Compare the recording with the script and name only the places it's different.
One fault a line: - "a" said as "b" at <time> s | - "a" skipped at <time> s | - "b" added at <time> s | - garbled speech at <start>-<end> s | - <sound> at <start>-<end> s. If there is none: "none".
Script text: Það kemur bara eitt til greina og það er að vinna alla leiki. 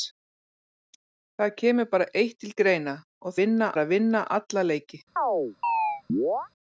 - "það" said as "vinna" at 3.4 s
- chirp at 5.2-6.5 s